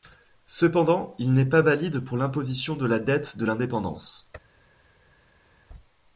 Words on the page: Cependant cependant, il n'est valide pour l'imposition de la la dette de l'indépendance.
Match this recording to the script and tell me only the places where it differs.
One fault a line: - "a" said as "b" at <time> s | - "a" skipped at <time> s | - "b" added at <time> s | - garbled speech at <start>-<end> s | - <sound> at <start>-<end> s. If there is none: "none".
- "cependant" skipped at 1.1 s
- "pas" added at 1.4 s
- "la" skipped at 3.0 s